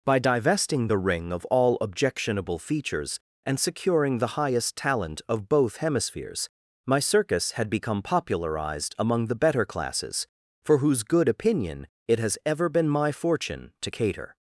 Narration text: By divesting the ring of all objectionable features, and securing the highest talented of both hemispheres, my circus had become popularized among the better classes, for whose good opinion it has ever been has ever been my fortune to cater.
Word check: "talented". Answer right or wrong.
wrong